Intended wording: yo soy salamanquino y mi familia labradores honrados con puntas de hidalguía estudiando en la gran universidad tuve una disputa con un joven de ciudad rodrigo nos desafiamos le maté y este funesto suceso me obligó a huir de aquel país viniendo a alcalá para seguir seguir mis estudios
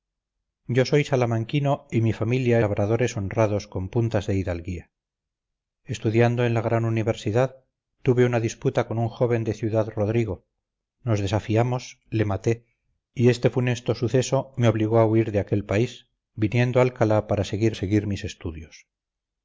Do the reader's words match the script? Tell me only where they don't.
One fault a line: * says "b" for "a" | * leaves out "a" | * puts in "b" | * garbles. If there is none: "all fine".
all fine